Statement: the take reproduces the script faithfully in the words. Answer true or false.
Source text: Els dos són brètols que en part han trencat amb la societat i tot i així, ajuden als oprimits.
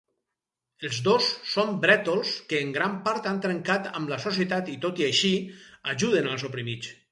false